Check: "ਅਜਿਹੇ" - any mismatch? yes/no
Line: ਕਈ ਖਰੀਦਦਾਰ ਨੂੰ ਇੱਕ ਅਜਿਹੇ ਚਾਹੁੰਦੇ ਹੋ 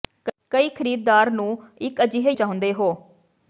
no